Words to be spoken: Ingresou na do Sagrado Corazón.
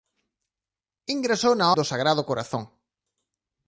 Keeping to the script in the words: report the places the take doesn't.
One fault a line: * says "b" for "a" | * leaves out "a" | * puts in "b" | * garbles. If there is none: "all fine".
all fine